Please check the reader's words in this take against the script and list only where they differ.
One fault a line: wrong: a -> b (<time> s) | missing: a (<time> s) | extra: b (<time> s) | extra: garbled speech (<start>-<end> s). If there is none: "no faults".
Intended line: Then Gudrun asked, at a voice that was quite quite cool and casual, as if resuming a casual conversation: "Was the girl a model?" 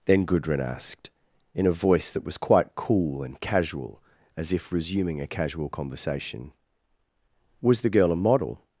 wrong: at -> in (1.5 s)
missing: quite (2.8 s)